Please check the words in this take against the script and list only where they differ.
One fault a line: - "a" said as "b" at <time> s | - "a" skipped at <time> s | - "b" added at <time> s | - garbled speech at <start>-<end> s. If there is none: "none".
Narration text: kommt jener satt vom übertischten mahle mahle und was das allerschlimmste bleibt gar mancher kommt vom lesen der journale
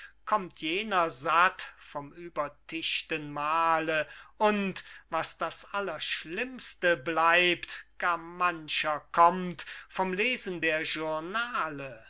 - "mahle" skipped at 4.1 s